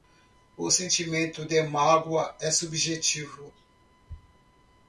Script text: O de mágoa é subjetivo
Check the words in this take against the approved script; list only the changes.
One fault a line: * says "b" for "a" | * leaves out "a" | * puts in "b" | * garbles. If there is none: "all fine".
* puts in "sentimento"